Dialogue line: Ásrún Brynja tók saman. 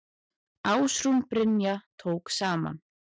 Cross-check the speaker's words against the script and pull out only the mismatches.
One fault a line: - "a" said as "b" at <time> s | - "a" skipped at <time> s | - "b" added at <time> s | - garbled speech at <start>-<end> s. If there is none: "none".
none